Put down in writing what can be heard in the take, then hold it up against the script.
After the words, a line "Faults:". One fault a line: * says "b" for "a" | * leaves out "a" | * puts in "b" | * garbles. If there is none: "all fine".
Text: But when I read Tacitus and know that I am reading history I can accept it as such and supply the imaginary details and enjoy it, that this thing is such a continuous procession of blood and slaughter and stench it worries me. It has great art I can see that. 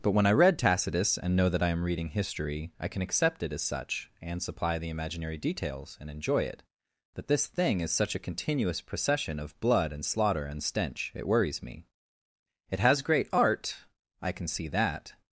But when I read Tacitus and know that I am reading history I can accept it as such and supply the imaginary details and enjoy it, that this thing is such a continuous procession of blood and slaughter and stench it worries me. It has great art I can see that.
Faults:
all fine